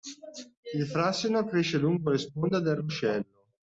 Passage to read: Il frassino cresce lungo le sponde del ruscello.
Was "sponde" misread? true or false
false